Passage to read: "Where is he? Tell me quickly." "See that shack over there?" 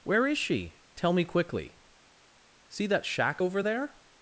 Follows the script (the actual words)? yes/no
no